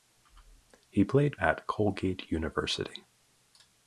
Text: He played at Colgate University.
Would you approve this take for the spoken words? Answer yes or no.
yes